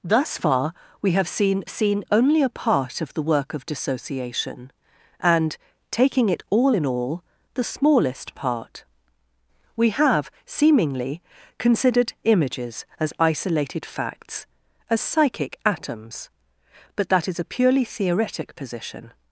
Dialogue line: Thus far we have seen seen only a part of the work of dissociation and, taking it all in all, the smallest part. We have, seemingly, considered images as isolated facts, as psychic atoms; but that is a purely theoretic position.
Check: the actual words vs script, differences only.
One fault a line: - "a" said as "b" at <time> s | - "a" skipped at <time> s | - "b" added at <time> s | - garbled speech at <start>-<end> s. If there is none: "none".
none